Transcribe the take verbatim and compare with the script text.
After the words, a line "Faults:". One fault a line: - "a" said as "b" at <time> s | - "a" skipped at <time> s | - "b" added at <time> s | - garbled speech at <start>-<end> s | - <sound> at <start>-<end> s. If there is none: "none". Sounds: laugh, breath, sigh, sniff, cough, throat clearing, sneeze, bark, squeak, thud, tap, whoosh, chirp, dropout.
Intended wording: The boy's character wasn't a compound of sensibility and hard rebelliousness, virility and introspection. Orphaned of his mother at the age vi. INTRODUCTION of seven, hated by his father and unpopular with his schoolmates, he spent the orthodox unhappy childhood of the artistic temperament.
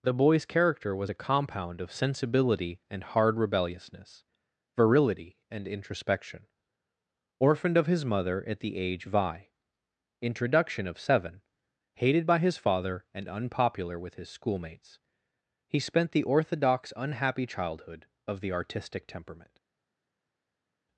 The boy's character was a compound of sensibility and hard rebelliousness, virility and introspection. Orphaned of his mother at the age vi. INTRODUCTION of seven, hated by his father and unpopular with his schoolmates, he spent the orthodox unhappy childhood of the artistic temperament.
Faults:
- "wasn't" said as "was" at 0.9 s